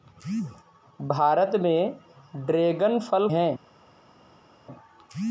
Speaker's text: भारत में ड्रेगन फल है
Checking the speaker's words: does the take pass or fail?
pass